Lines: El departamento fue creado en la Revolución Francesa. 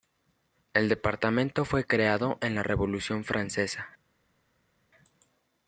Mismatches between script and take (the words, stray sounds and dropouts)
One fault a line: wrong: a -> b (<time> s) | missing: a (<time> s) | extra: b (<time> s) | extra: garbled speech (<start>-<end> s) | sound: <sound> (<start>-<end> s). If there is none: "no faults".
no faults